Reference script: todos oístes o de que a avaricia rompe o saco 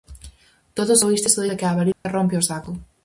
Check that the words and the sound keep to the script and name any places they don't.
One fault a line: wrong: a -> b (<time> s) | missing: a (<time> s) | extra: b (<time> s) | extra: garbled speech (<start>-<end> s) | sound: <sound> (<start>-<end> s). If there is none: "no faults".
sound: dropout (1.9-2.1 s)